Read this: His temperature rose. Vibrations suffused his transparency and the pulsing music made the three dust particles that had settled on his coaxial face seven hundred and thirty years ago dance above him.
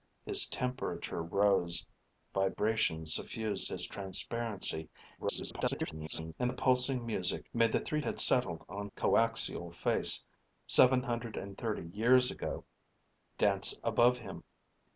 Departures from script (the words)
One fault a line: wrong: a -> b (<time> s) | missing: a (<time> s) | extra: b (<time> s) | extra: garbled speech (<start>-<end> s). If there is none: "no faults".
extra: garbled speech (5.2-6.3 s)
missing: dust particles that (8.0 s)
missing: his (8.9 s)